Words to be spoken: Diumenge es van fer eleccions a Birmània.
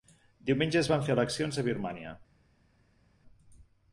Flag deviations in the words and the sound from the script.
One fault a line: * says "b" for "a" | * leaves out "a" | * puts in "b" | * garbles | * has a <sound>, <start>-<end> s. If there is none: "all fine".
all fine